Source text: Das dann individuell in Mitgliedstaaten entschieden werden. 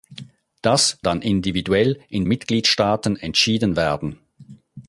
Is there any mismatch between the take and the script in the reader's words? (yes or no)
no